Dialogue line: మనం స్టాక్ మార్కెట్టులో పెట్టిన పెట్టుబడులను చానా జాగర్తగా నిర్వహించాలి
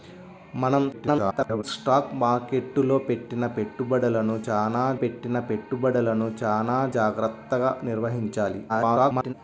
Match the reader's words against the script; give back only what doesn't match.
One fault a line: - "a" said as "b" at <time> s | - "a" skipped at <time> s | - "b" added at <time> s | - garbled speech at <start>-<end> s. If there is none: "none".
- garbled speech at 0.9-1.6 s
- "పెట్టిన పెట్టుబడులను చానా" added at 5.0 s
- garbled speech at 8.7-9.3 s